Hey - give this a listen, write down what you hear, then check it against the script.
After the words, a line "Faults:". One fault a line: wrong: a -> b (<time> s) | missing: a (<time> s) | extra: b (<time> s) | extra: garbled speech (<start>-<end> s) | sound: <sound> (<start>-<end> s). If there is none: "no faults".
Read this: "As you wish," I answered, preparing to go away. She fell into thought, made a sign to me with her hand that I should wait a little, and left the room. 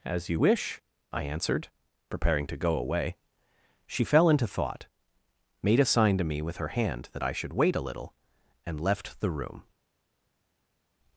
"As you wish," I answered, preparing to go away. She fell into thought, made a sign to me with her hand that I should wait a little, and left the room.
Faults:
no faults